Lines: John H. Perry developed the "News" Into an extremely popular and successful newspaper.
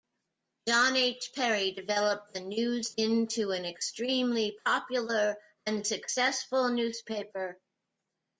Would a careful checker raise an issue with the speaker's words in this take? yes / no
no